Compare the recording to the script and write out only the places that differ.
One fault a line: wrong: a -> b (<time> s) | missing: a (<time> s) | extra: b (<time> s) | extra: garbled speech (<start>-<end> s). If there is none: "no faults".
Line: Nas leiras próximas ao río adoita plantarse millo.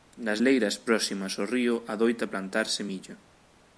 no faults